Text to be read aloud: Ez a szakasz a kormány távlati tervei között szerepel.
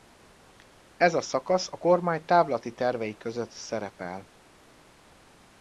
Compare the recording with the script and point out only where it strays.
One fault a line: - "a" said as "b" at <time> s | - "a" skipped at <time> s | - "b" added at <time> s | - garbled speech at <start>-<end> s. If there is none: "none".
none